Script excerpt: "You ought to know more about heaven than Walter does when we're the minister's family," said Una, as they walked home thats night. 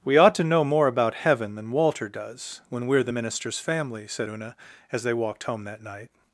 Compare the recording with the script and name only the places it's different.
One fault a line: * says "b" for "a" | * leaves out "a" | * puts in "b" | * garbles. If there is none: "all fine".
* says "We" for "You"
* says "that" for "thats"